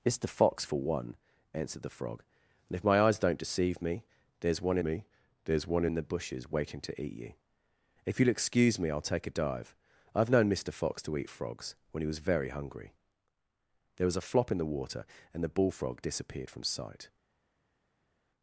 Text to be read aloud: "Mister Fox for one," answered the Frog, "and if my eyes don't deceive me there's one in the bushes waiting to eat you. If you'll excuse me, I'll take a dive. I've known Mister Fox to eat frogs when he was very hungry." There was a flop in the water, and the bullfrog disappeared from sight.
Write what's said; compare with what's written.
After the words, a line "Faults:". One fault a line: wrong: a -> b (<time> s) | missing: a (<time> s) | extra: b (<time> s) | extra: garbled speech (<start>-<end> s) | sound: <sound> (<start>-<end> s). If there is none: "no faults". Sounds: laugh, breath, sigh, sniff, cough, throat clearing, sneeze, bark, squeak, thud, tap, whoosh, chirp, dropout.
"Mister Fox for one," answered the Frog, "and if my eyes don't deceive me there's one me there's one in the bushes waiting to eat you. If you'll excuse me, I'll take a dive. I've known Mister Fox to eat frogs when he was very hungry." There was a flop in the water, and the bullfrog disappeared from sight.
Faults:
extra: me there's one (4.8 s)